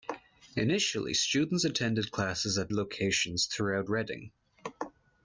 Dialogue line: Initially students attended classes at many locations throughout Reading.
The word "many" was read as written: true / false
false